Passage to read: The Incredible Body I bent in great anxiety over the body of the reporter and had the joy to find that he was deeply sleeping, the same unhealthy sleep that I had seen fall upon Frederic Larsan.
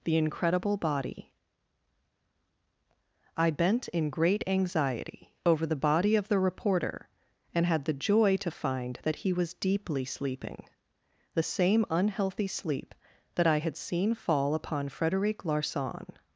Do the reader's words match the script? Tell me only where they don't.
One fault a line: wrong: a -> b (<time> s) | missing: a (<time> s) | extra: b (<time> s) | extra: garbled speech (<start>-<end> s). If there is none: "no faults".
no faults